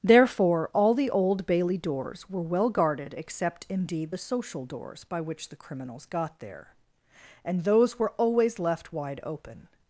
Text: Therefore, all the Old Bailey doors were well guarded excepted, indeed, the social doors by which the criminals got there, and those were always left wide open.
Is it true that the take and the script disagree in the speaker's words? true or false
true